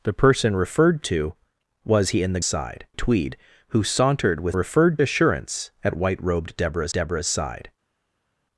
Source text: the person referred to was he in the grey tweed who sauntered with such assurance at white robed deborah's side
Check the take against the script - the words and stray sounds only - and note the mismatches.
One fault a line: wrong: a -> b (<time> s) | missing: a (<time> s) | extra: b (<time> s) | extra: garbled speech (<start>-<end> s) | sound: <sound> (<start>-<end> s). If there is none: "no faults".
wrong: grey -> side (2.4 s)
wrong: such -> referred (4.5 s)
extra: deborah's (6.9 s)